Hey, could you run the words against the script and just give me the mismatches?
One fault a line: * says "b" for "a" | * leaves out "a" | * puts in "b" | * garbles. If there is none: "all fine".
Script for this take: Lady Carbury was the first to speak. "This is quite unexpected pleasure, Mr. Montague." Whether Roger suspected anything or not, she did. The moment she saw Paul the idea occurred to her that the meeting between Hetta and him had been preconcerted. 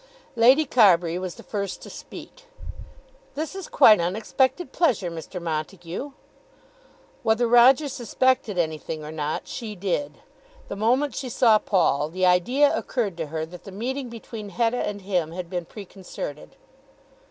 all fine